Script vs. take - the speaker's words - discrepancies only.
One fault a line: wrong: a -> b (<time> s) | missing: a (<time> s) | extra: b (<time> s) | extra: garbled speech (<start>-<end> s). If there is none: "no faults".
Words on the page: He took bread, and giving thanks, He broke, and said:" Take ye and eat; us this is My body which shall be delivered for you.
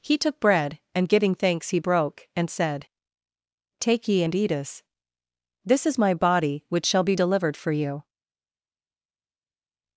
no faults